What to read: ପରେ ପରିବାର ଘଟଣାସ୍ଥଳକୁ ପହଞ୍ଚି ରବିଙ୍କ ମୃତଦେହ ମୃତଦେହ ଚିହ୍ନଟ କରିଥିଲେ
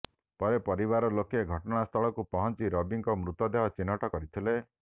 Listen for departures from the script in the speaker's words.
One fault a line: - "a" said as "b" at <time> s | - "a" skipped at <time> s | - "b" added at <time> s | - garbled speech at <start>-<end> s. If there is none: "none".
- "ଲୋକେ" added at 1.2 s
- "ମୃତଦେହ" skipped at 3.7 s